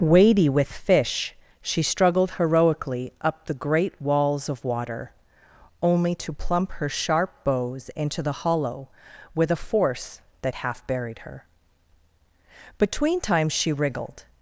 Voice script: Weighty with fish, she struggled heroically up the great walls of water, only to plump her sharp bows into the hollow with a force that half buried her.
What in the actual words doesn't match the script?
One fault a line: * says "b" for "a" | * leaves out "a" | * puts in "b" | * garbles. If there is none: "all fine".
* puts in "Between times she wriggled"